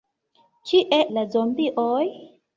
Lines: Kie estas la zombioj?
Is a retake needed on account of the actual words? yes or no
yes